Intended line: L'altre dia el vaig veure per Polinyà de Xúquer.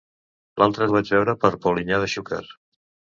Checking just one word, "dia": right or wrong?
wrong